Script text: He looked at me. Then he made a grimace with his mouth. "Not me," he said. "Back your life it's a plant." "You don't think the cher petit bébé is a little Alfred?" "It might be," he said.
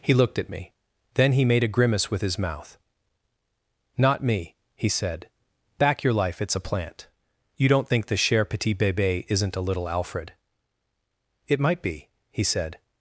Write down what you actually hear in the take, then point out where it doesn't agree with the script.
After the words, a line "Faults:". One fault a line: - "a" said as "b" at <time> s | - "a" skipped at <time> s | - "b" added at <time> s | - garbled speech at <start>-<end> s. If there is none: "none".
He looked at me. Then he made a grimace with his mouth. "Not me," he said. "Back your life it's a plant." "You don't think the cher petit bébé isn't a little Alfred?" "It might be," he said.
Faults:
- "is" said as "isn't" at 9.3 s